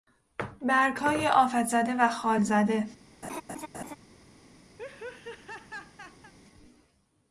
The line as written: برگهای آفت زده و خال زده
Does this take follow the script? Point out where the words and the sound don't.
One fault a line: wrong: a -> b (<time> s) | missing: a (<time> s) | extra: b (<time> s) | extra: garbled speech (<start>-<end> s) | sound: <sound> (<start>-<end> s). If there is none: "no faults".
sound: laugh (3.2-4.0 s)
sound: laugh (4.8-6.3 s)